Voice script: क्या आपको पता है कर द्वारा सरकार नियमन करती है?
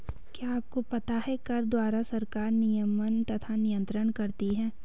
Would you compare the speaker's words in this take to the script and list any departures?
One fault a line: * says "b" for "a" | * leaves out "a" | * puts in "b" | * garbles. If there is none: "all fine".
* puts in "तथा नियन्त्रण"